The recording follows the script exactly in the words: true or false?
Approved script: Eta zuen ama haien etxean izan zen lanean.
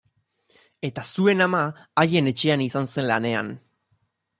true